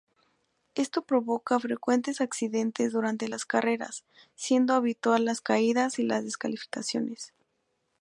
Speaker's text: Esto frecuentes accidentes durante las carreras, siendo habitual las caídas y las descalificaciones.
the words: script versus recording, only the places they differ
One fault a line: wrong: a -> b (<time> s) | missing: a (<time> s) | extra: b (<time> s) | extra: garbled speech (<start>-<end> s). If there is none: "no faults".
extra: provoca (1.0 s)